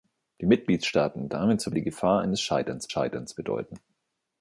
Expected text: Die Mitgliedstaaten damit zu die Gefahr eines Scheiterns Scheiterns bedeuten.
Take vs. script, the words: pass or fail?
pass